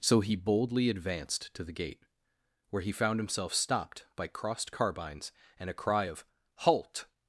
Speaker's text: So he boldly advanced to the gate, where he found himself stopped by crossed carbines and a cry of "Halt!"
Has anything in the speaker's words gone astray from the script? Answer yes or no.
no